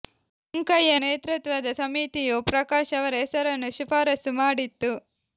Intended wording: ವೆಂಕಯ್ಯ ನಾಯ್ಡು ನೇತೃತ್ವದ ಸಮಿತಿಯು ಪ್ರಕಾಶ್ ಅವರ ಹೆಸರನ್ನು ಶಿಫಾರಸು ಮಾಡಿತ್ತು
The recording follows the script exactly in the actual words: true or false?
false